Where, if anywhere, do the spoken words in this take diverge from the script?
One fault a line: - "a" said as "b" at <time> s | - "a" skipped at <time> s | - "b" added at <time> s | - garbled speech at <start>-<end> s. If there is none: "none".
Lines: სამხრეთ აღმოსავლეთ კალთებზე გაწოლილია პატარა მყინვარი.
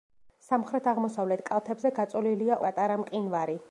none